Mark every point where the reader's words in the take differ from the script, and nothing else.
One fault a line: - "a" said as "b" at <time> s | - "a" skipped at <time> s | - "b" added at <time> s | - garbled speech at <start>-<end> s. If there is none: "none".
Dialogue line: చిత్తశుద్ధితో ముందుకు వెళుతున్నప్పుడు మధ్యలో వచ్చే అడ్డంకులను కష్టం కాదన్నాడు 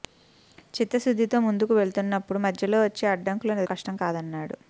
none